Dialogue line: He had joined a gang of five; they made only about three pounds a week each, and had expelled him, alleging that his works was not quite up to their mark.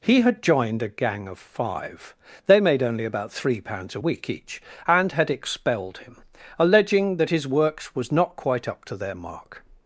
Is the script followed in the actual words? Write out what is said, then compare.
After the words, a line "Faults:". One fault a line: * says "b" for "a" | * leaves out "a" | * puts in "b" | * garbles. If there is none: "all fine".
He had joined a gang of five; they made only about three pounds a week each, and had expelled him, alleging that his works was not quite up to their mark.
Faults:
all fine